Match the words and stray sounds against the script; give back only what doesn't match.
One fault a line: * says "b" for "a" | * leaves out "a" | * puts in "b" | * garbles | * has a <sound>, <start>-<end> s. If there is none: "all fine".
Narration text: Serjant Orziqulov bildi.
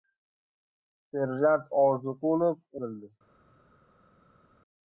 all fine